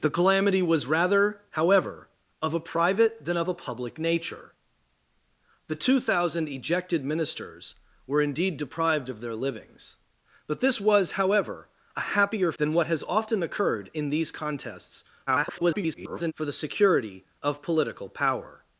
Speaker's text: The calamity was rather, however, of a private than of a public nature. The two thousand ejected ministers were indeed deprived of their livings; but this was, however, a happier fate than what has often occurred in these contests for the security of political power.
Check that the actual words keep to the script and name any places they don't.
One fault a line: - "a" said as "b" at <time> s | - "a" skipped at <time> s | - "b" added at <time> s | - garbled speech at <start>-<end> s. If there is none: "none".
- "fate" skipped at 12.5 s
- garbled speech at 15.3-16.3 s